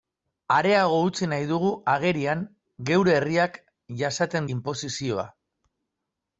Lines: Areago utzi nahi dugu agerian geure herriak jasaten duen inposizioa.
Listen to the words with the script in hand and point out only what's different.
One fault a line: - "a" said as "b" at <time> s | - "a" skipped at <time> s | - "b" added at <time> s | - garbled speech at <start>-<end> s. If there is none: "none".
- "duen" skipped at 4.5 s